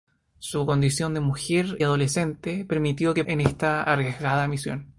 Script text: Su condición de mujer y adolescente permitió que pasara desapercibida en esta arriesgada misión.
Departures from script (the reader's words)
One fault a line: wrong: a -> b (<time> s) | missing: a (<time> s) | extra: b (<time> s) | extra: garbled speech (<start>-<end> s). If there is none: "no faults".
missing: y (1.8 s)
missing: pasara desapercibida (3.2 s)